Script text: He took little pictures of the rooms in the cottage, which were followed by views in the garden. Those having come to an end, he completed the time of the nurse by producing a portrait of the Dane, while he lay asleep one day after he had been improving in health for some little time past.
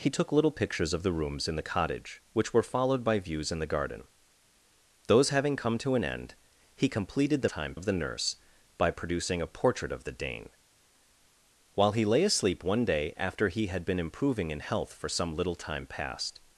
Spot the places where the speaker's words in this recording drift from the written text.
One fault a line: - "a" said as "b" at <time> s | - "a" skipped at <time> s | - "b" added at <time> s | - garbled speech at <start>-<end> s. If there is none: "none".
none